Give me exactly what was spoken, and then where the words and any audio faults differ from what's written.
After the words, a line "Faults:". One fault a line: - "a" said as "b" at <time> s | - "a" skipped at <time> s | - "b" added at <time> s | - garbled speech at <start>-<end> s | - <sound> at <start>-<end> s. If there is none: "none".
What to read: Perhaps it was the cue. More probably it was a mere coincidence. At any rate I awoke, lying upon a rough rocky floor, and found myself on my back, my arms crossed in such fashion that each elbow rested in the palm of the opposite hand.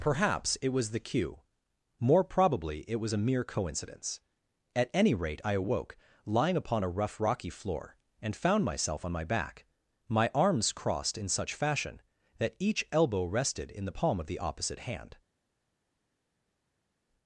Perhaps it was the cue. More probably it was a mere coincidence. At any rate I awoke, lying upon a rough rocky floor, and found myself on my back, my arms crossed in such fashion that each elbow rested in the palm of the opposite hand.
Faults:
none